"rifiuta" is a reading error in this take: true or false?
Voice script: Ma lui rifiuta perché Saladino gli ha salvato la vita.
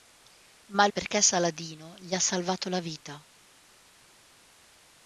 true